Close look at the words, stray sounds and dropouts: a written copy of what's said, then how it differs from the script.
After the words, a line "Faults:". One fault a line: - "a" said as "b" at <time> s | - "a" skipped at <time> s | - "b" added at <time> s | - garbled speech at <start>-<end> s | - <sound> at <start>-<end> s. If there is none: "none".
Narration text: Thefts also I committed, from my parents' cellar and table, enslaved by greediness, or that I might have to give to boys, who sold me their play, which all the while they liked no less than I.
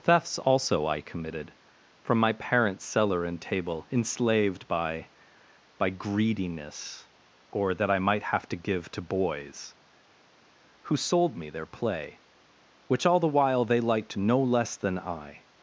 Thefts also I committed, from my parents' cellar and table, enslaved by by greediness, or that I might have to give to boys, who sold me their play, which all the while they liked no less than I.
Faults:
- "by" added at 5.8 s